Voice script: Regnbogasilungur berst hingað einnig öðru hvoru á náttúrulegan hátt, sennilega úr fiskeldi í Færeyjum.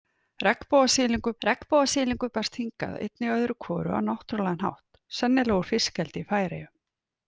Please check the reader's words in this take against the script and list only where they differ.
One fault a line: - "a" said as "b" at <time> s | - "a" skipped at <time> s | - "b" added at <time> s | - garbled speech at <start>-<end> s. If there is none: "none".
- "regnbogasilungur" added at 1.4 s